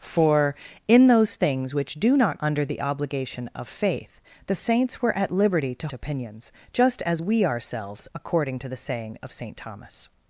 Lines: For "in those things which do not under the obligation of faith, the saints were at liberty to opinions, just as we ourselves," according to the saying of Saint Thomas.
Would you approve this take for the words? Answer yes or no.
yes